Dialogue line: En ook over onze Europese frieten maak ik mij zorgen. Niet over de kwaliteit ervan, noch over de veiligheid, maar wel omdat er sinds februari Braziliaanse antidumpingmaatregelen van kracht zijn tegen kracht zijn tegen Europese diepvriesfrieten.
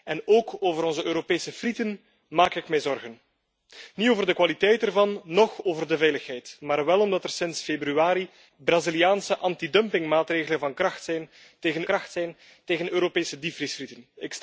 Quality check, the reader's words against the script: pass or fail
pass